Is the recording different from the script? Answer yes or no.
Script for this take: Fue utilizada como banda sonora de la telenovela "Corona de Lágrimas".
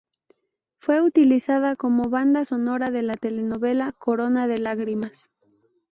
no